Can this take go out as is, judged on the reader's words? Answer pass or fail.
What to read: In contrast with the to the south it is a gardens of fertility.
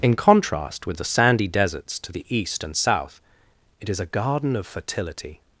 fail